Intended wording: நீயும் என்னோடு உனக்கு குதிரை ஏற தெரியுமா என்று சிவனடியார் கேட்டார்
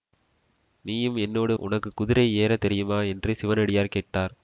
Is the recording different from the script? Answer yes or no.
no